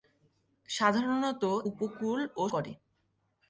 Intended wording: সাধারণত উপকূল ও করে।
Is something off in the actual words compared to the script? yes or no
no